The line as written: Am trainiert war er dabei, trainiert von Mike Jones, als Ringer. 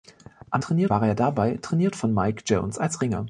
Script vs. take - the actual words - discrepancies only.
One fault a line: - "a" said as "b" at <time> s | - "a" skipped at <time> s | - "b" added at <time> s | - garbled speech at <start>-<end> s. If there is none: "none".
none